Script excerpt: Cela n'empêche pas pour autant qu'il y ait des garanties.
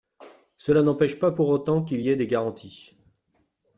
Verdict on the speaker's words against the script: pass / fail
pass